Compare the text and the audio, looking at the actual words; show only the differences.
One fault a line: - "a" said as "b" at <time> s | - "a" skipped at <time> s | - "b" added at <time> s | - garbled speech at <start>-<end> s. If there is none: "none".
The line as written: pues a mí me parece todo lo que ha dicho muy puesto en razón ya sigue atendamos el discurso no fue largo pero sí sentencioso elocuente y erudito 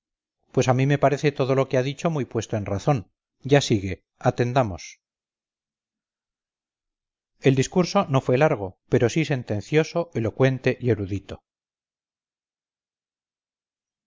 none